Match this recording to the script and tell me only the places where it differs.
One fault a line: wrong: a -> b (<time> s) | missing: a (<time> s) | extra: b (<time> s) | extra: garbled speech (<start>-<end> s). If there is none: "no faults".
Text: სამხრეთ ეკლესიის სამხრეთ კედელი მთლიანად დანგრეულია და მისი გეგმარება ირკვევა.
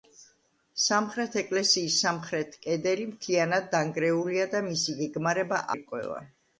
no faults